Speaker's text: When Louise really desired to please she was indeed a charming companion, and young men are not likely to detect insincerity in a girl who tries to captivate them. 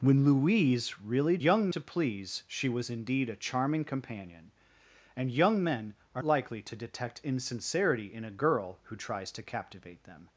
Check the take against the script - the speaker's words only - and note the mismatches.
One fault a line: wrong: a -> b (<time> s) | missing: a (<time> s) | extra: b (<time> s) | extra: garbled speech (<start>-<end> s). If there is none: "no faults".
wrong: desired -> young (1.4 s)
missing: not (6.2 s)